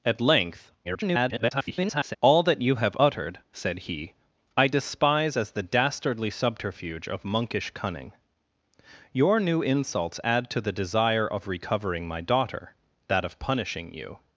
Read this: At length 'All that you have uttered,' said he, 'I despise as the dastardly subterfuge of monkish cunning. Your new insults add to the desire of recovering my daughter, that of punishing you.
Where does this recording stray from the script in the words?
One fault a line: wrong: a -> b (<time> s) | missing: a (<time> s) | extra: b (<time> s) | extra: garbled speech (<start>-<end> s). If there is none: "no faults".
extra: garbled speech (0.8-2.2 s)